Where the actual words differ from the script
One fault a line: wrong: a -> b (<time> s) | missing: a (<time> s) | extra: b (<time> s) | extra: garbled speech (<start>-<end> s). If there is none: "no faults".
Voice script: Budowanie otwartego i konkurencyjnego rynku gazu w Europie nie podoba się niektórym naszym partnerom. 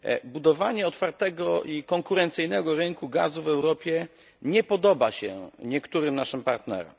no faults